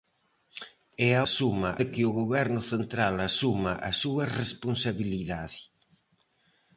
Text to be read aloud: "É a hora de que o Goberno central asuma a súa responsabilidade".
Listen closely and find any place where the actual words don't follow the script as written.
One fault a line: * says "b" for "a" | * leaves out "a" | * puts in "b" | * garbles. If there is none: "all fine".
* says "asuma" for "hora"